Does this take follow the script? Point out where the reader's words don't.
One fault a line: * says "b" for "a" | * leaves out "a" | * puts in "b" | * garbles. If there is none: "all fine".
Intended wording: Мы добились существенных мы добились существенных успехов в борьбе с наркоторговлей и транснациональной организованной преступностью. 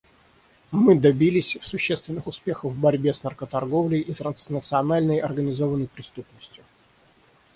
* leaves out "мы добились существенных"